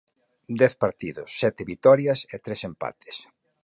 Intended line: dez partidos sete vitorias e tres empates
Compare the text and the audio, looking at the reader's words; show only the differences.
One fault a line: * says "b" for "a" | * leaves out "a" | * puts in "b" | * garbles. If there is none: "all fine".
all fine